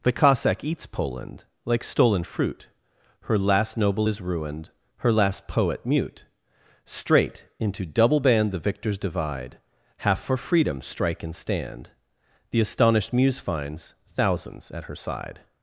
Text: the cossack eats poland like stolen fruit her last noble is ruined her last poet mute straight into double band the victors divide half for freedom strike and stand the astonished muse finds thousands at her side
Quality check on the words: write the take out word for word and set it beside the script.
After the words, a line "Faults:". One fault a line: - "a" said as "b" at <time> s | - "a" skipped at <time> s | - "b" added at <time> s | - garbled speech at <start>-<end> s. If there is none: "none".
the cossack eats poland like stolen fruit her last noble is ruined her last poet mute straight into double band the victors divide half for freedom strike and stand the astonished muse finds thousands at her side
Faults:
none